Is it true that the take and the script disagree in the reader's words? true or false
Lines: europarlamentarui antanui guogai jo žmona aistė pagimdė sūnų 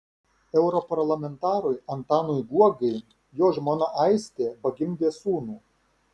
false